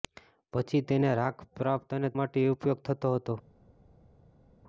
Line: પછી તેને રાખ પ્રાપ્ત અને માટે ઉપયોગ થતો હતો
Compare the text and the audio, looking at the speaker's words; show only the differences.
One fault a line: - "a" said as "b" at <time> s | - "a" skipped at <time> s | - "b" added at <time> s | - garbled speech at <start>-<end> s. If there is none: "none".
none